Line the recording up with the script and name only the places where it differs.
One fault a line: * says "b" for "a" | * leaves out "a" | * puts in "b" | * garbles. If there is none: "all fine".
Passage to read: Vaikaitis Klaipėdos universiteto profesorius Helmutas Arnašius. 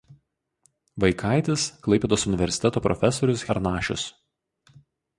* leaves out "Helmutas"